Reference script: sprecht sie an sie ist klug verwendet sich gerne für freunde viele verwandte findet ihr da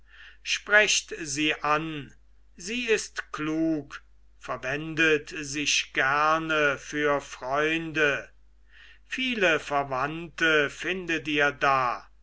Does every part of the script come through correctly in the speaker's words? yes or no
yes